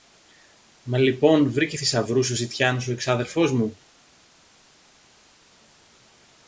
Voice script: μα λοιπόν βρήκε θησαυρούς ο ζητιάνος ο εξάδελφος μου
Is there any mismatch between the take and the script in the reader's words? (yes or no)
no